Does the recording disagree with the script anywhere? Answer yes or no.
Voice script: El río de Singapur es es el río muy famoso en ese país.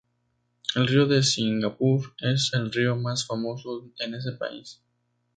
yes